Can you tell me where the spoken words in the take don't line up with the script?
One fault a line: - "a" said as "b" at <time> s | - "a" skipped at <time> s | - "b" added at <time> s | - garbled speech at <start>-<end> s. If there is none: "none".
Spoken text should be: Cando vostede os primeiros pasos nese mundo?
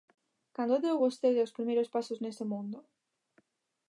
- "deu" added at 0.8 s